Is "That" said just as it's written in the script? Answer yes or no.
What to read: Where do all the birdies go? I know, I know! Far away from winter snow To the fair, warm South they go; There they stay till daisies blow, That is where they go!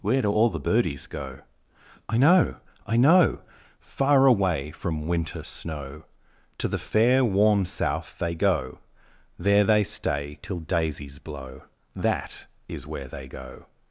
yes